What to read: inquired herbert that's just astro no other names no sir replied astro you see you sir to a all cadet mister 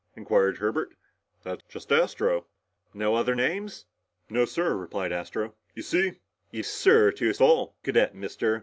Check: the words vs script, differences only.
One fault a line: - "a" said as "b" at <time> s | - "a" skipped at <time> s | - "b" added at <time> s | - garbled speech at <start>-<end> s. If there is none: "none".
none